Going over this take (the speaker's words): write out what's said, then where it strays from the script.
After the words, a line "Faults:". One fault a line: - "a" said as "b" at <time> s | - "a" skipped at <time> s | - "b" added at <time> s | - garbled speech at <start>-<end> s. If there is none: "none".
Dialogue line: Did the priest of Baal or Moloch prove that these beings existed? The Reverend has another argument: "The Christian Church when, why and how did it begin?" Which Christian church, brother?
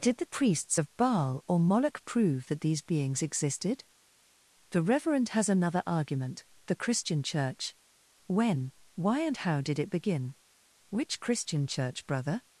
Did the priests of Baal or Moloch prove that these beings existed? The Reverend has another argument: "The Christian Church when, why and how did it begin?" Which Christian church, brother?
Faults:
- "priest" said as "priests" at 0.3 s